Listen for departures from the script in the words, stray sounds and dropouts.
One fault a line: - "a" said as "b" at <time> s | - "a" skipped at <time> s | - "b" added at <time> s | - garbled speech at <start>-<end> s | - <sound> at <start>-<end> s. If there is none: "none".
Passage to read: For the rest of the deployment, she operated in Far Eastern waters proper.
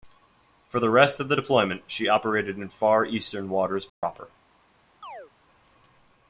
- dropout at 3.9-4.0 s
- chirp at 5.0-5.3 s